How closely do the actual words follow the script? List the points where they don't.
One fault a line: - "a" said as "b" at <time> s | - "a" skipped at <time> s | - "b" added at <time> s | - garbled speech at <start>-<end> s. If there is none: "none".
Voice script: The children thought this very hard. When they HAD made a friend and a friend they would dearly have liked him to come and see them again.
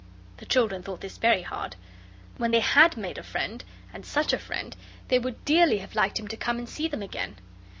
- "such" added at 4.1 s